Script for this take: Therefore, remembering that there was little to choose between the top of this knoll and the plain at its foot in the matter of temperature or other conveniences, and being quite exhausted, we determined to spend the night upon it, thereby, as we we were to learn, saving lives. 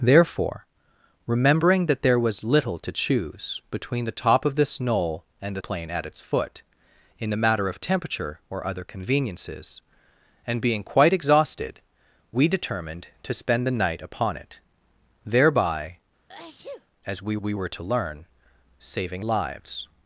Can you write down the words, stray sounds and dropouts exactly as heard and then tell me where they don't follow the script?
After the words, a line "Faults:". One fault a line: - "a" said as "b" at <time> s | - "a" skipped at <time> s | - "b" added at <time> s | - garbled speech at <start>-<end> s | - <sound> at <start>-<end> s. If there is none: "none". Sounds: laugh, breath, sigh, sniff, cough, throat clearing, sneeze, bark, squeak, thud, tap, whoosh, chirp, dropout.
Therefore, remembering that there was little to choose between the top of this knoll and the plain at its foot in the matter of temperature or other conveniences, and being quite exhausted, we determined to spend the night upon it, thereby, as we we were to learn, saving lives.
Faults:
- sneeze at 16.3-16.9 s